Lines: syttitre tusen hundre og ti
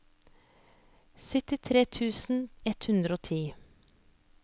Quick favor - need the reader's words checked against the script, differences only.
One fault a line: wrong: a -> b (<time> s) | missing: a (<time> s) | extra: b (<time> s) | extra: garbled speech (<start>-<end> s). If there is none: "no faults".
extra: ett (2.7 s)